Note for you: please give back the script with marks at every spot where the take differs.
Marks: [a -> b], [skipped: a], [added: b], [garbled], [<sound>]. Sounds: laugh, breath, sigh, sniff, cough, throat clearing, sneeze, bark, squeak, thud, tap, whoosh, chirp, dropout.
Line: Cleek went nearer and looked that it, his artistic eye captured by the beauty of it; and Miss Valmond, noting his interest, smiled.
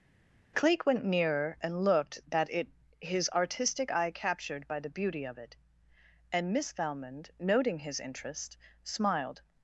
Cleek went nearer and looked that it, his artistic eye captured by the beauty of it; and Miss Valmond, noting his interest, smiled.